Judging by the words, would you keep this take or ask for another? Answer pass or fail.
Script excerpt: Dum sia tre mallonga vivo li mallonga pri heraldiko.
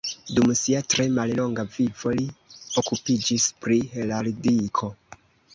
fail